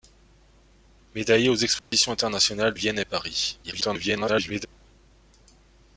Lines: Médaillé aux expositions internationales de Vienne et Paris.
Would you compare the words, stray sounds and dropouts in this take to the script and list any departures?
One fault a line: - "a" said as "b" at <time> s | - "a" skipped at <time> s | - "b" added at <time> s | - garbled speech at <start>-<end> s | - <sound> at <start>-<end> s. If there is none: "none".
- dropout at 1.8-1.9 s
- "de" skipped at 2.7 s
- garbled speech at 3.6-4.7 s